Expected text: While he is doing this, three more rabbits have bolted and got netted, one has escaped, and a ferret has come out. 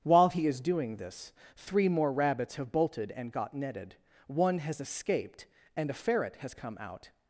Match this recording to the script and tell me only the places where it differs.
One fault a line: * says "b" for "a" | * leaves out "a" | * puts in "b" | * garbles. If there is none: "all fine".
all fine